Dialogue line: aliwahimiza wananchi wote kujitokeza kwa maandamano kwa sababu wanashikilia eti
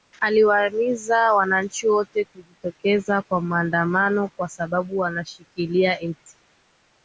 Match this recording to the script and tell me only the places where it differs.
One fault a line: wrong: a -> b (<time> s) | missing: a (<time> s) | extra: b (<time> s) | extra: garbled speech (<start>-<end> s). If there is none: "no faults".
no faults